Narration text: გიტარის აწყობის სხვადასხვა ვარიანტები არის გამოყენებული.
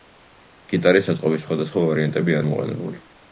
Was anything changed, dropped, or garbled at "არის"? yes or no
yes